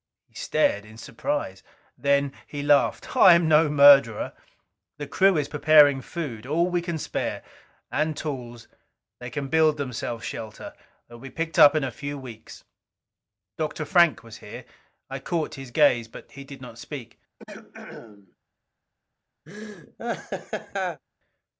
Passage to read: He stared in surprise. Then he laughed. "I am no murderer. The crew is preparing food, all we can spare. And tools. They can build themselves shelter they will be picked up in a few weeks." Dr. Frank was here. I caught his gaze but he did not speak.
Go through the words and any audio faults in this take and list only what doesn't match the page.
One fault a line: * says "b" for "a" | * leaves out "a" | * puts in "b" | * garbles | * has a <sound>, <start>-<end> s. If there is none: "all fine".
* has a throat clearing, 17.4-18.4 s
* has a laugh, 19.5-21.0 s